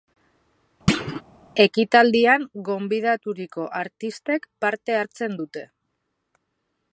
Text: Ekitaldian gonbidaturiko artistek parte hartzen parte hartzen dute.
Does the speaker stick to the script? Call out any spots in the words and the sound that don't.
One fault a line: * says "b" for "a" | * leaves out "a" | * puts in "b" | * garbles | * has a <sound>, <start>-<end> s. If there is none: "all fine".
* has a thud, 0.9-1.2 s
* leaves out "parte hartzen"